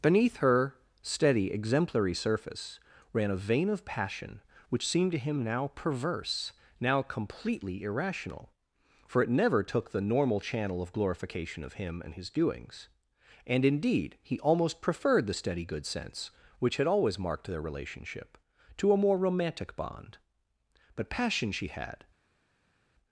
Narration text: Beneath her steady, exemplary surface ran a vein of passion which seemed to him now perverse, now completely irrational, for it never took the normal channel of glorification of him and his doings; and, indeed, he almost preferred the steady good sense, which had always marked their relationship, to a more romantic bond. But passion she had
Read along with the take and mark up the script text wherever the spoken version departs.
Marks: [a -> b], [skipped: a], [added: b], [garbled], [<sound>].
Beneath her steady, exemplary surface ran a vein of passion which seemed to him now perverse, now completely irrational, for it never took the normal channel of glorification of him and his doings; and, indeed, he almost preferred the steady good sense, which had always marked their relationship, to a more romantic bond. But passion she had